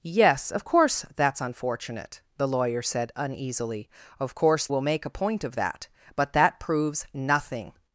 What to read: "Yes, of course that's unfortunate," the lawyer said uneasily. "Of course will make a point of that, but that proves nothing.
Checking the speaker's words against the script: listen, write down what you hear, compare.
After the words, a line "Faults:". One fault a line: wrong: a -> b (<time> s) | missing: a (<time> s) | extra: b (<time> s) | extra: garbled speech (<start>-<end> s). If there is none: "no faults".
"Yes, of course that's unfortunate," the lawyer said uneasily. "Of course will make a point of that, but that proves nothing.
Faults:
no faults